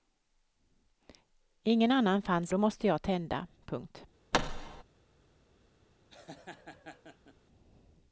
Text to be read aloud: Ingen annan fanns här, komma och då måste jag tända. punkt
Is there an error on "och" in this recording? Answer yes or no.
yes